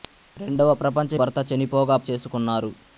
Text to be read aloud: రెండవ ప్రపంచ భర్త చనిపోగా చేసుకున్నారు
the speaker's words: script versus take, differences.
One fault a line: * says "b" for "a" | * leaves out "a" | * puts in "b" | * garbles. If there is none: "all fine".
all fine